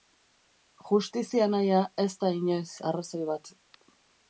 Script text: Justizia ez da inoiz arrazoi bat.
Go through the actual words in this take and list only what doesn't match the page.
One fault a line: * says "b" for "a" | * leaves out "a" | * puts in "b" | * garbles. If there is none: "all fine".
* puts in "nahia"